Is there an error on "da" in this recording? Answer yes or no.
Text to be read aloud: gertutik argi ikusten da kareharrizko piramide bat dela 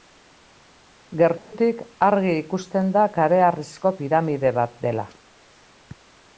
no